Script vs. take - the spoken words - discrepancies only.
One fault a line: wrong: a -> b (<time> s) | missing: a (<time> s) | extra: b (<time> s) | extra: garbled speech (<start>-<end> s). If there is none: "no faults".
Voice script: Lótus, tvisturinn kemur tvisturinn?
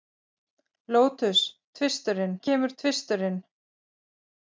no faults